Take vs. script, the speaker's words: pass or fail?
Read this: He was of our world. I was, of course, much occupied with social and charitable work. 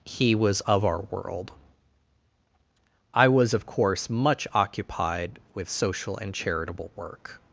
pass